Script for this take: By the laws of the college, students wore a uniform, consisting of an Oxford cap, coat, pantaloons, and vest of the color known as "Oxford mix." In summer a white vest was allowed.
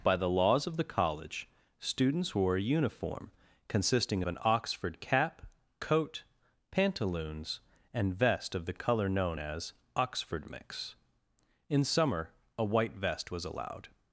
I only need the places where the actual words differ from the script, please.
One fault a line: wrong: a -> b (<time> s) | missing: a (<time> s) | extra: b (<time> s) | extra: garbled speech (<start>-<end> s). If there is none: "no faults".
no faults